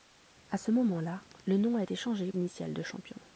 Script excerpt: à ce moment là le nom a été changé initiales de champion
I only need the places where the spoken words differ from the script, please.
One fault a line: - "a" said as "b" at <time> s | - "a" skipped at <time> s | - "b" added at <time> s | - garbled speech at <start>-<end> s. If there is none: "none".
none